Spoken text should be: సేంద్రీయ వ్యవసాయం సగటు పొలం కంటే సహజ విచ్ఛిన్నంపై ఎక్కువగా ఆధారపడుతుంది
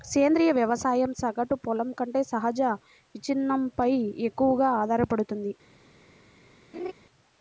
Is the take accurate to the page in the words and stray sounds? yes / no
no